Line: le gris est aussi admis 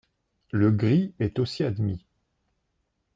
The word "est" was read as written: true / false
true